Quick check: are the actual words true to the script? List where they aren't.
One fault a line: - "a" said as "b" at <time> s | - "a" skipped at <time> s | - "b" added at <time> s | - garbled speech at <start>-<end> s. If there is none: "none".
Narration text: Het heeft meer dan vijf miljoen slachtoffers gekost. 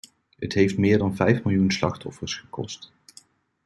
none